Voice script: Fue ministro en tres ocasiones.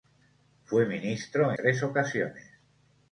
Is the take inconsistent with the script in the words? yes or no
yes